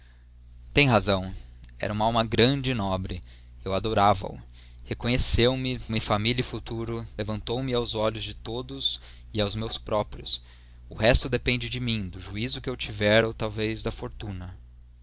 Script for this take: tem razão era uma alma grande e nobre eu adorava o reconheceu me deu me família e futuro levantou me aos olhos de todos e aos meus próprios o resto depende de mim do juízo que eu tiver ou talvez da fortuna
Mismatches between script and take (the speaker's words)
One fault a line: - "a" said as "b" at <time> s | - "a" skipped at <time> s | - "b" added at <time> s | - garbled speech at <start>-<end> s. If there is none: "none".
- "deu" skipped at 5.8 s